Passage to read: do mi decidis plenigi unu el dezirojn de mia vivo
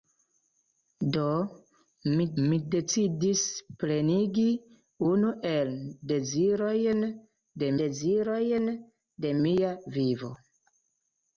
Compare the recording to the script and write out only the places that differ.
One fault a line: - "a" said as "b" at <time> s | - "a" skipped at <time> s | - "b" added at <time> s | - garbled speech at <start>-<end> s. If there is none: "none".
- "mi" added at 2.5 s
- "dezirojn de" added at 7.8 s